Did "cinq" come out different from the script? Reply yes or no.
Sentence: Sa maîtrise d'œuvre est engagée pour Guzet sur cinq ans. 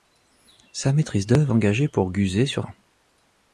yes